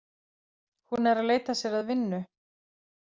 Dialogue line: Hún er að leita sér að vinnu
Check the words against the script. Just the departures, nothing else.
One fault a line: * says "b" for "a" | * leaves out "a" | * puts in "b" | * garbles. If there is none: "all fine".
all fine